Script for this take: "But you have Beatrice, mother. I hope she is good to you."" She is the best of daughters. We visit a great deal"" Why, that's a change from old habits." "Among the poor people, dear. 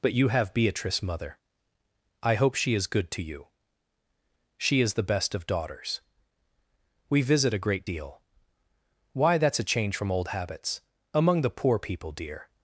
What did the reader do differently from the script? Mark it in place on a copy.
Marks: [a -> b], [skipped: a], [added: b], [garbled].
"But you have Beatrice, mother. I hope she is good to you."" She is the best of daughters. We visit a great deal"" Why, that's a change from old habits." "Among the poor people, dear.